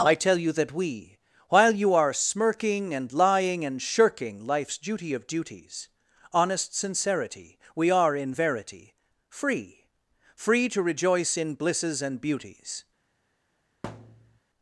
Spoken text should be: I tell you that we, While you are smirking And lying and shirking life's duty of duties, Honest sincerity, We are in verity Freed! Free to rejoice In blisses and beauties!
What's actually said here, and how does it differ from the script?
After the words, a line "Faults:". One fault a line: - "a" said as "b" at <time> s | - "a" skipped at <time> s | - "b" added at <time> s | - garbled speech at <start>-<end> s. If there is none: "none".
I tell you that we, While you are smirking And lying and shirking life's duty of duties, Honest sincerity, We are in verity Free! Free to rejoice In blisses and beauties!
Faults:
- "Freed" said as "Free" at 9.3 s